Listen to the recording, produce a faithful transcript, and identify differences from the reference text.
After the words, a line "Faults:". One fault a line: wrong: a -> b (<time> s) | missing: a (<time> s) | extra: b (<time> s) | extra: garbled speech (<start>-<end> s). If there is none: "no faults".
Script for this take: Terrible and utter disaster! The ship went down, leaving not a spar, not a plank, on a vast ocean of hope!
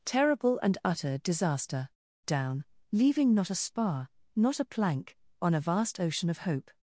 Terrible and utter disaster! Down, leaving not a spar, not a plank, on a vast ocean of hope!
Faults:
missing: The ship went (1.9 s)